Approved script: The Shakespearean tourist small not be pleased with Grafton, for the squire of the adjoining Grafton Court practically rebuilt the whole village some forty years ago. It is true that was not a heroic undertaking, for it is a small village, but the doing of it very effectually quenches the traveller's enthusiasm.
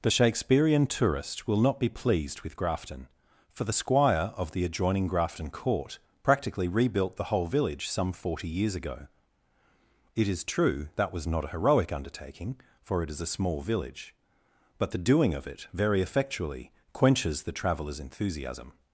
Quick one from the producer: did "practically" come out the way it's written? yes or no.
yes